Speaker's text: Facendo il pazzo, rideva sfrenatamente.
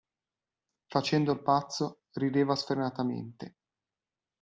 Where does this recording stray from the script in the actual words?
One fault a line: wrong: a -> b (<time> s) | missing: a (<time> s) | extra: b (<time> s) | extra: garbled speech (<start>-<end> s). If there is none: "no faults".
no faults